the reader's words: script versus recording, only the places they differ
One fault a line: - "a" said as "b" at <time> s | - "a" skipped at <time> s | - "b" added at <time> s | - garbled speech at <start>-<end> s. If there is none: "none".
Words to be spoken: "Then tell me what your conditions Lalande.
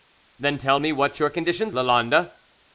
none